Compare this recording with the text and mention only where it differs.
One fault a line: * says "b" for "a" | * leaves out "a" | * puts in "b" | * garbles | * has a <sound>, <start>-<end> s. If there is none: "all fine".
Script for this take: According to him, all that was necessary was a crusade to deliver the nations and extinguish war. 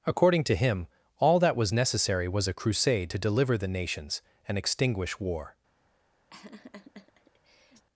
* has a laugh, 6.3-7.9 s